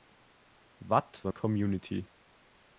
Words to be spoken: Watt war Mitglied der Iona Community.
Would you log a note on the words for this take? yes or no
yes